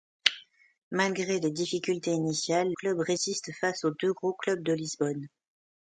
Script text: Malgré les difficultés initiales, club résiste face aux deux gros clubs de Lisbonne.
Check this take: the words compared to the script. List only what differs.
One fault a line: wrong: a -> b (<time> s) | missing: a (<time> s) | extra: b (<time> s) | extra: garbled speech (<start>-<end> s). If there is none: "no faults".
no faults